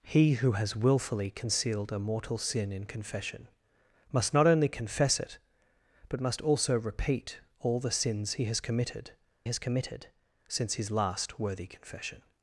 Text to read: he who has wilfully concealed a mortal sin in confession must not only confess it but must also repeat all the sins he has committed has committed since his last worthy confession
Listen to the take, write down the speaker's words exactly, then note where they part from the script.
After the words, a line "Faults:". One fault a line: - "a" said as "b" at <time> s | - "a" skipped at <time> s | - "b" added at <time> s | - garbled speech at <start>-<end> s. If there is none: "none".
he who has wilfully concealed a mortal sin in confession must not only confess it but must also repeat all the sins he has committed has committed since his last worthy confession
Faults:
none